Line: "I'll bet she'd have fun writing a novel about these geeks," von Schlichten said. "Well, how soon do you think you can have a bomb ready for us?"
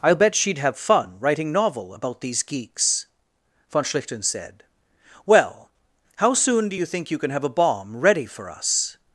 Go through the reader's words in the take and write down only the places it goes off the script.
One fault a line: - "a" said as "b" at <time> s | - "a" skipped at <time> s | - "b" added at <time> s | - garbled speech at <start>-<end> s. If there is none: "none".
- "a" skipped at 1.5 s